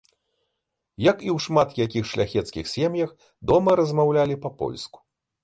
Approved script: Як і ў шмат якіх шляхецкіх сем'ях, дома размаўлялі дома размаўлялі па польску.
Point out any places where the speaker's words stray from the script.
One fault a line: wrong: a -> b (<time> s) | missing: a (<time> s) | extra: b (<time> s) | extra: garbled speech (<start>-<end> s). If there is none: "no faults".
missing: дома размаўлялі (4.4 s)